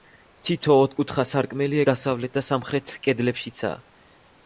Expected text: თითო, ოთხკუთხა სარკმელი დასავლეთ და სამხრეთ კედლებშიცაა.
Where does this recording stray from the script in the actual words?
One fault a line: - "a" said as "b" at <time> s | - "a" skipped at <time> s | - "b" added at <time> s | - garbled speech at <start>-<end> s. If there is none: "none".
none